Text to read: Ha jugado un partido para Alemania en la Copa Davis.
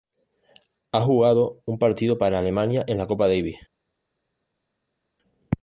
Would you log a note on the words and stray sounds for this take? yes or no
no